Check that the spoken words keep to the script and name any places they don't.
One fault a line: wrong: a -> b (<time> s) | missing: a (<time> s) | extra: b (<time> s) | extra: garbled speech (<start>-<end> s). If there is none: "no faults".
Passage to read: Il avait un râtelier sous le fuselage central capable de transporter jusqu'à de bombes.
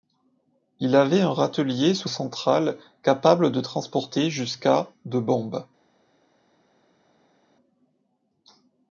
missing: le fuselage (2.1 s)